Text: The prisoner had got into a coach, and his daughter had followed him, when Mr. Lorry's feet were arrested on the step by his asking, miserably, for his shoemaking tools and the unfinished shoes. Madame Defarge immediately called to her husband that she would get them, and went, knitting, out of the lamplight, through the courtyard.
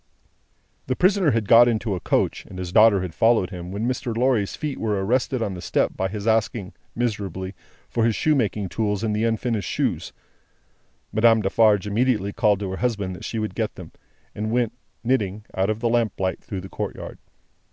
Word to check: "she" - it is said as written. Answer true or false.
true